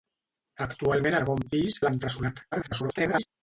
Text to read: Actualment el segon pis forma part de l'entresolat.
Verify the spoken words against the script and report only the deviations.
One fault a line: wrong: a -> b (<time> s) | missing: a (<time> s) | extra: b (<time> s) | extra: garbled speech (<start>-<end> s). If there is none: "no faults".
missing: el (1.2 s)
missing: forma part (1.8 s)
extra: garbled speech (2.5-3.3 s)